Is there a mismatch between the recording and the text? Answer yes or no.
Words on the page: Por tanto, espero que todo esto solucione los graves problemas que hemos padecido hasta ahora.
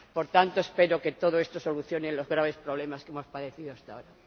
no